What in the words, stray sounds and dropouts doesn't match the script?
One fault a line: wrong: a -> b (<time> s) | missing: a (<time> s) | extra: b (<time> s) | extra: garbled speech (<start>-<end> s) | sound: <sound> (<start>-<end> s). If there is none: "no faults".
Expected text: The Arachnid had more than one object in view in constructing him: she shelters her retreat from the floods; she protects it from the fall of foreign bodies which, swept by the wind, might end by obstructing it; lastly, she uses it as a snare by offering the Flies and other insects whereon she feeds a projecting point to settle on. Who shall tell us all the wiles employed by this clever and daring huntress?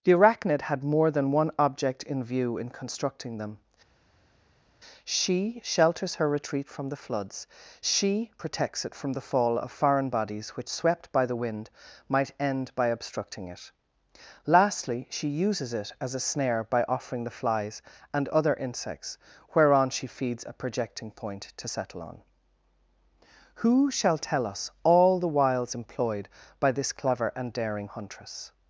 wrong: him -> them (3.4 s)